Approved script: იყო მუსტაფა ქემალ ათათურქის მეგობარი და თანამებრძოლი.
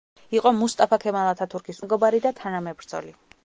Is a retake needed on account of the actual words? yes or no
no